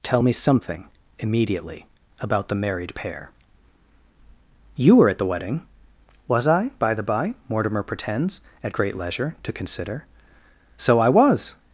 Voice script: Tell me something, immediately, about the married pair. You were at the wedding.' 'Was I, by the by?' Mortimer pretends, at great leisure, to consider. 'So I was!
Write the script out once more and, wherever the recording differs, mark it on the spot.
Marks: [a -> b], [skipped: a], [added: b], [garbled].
Tell me something, immediately, about the married pair. You were at the wedding.' 'Was I, by the by?' Mortimer pretends, at great leisure, to consider. 'So I was!